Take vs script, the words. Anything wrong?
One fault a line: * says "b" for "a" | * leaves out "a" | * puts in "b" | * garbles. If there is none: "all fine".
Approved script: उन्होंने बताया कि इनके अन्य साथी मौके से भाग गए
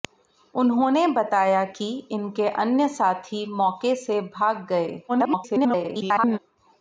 * garbles